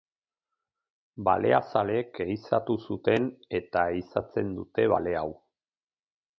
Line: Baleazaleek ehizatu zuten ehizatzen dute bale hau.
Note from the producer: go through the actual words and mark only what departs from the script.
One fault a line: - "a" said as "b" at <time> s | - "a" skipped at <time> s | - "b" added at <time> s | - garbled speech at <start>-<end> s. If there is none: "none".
- "eta" added at 3.6 s